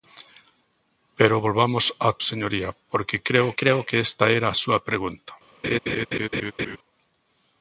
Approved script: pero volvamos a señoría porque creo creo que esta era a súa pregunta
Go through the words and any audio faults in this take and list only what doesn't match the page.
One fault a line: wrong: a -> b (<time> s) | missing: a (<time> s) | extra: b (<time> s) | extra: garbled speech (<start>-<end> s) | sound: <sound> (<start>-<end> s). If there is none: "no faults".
sound: laugh (5.6-6.8 s)